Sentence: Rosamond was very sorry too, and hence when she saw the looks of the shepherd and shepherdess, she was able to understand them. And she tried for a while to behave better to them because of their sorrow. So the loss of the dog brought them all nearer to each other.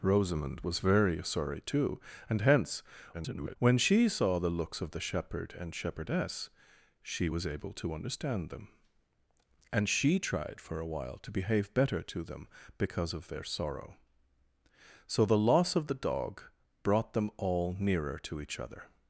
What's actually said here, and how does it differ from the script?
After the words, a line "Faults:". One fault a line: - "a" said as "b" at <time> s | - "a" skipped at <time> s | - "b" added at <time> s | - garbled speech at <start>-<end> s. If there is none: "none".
Rosamond was very sorry too, and hence [garbled] when she saw the looks of the shepherd and shepherdess, she was able to understand them. And she tried for a while to behave better to them because of their sorrow. So the loss of the dog brought them all nearer to each other.
Faults:
- garbled speech at 3.1-3.6 s